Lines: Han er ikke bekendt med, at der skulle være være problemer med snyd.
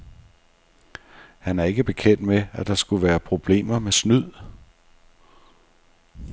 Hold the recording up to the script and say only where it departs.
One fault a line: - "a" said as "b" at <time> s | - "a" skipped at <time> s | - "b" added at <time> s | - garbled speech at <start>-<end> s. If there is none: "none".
- "være" skipped at 3.2 s